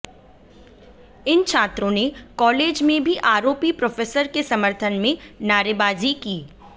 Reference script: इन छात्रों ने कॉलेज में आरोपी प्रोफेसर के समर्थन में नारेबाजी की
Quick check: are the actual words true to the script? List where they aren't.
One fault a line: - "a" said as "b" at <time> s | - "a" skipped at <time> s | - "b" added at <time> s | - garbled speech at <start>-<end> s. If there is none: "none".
- "भी" added at 3.0 s